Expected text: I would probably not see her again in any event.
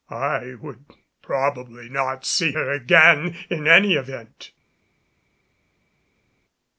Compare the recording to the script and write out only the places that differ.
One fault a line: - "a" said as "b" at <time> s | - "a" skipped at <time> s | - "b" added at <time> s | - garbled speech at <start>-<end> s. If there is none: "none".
none